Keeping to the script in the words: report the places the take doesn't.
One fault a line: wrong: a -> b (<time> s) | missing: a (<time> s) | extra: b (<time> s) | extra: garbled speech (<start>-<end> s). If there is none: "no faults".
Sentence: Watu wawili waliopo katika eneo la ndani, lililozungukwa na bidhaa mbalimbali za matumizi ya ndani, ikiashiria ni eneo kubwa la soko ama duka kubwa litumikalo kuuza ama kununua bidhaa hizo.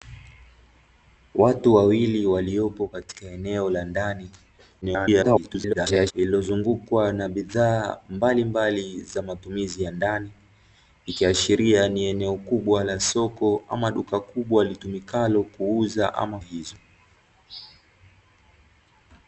extra: garbled speech (4.8-6.1 s)
missing: kununua bidhaa (16.4 s)